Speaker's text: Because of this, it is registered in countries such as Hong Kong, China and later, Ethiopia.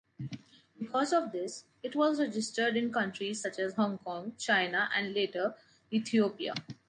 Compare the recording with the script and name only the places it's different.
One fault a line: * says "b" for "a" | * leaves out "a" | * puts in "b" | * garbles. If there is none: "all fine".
* says "was" for "is"